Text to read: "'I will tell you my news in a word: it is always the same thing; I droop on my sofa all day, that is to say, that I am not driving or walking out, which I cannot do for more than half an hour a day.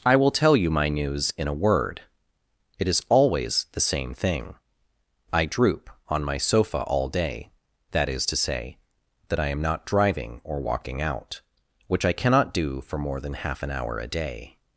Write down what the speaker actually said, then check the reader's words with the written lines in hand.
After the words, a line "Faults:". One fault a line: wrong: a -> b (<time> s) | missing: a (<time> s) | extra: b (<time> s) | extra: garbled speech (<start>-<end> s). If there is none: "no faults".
"'I will tell you my news in a word: it is always the same thing; I droop on my sofa all day, that is to say, that I am not driving or walking out, which I cannot do for more than half an hour a day.
Faults:
no faults